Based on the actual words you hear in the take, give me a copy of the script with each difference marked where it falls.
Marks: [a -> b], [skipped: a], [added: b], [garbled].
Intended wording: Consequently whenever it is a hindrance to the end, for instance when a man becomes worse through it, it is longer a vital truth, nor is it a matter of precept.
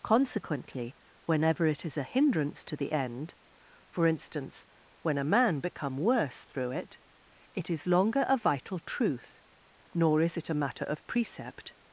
Consequently whenever it is a hindrance to the end, for instance when a man [becomes -> become] worse through it, it is longer a vital truth, nor is it a matter of precept.